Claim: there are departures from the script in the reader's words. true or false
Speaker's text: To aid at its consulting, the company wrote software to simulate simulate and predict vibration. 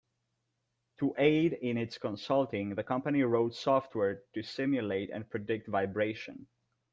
true